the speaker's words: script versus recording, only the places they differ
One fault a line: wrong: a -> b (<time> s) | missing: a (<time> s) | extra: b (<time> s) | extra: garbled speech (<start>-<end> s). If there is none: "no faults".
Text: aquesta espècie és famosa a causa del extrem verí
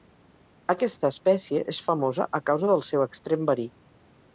extra: seu (2.9 s)